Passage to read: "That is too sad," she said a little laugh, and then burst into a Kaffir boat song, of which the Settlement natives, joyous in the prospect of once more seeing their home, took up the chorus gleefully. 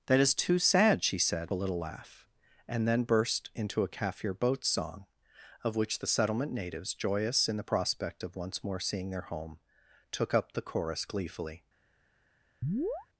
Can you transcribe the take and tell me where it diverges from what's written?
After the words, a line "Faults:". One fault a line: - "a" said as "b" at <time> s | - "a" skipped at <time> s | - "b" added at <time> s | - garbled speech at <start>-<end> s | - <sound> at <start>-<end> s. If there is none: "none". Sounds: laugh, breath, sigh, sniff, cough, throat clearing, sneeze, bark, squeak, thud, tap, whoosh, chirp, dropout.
"That is too sad," she said a little laugh, and then burst into a Kaffir boat song, of which the Settlement natives, joyous in the prospect of once more seeing their home, took up the chorus gleefully.
Faults:
- chirp at 12.6-13.1 s